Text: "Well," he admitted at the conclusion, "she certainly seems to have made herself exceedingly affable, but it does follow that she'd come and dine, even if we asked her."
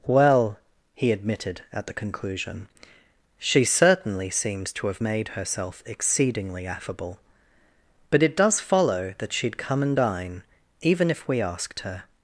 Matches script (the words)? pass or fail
pass